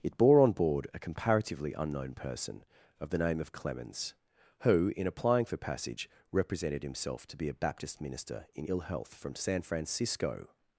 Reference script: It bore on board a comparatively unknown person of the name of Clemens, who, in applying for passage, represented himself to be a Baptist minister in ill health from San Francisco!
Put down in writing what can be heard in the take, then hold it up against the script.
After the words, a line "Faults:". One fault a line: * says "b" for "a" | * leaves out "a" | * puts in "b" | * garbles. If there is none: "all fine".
It bore on board a comparatively unknown person of the name of Clemens, who, in applying for passage, represented himself to be a Baptist minister in ill health from San Francisco!
Faults:
all fine